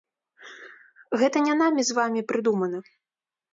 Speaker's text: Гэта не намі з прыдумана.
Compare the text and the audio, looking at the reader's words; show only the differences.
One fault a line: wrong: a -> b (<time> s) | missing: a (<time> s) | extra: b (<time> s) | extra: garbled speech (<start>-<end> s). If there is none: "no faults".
extra: вамі (2.0 s)